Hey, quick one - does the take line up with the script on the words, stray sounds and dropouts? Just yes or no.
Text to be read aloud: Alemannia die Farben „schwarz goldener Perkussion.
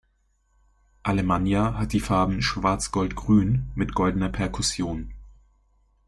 no